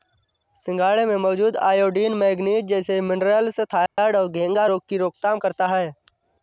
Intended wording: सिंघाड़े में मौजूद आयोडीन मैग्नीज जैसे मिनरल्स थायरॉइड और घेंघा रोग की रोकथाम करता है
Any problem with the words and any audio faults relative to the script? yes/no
yes